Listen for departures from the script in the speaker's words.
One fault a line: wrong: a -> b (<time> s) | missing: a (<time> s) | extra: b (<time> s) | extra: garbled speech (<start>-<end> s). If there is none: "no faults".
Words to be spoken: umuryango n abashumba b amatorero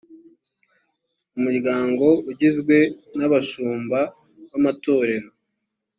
extra: ugizwe (2.3 s)